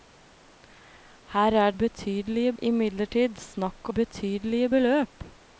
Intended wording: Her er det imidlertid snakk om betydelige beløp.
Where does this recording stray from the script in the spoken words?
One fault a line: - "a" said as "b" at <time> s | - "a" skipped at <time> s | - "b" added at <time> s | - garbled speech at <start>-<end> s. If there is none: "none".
- "det" said as "betydelige" at 1.8 s
- "om" skipped at 3.9 s